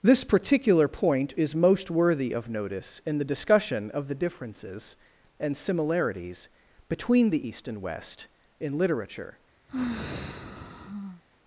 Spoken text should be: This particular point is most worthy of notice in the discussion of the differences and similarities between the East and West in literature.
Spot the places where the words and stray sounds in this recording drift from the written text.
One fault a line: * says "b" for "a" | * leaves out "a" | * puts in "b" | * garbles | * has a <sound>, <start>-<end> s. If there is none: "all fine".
* has a sigh, 9.7-11.2 s